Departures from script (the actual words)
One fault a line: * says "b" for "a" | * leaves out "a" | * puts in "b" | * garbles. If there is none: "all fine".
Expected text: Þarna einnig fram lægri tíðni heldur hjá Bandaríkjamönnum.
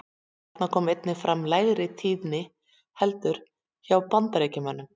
* puts in "kom"